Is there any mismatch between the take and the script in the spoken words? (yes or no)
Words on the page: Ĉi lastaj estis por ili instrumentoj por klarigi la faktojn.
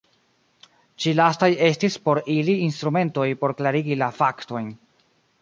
no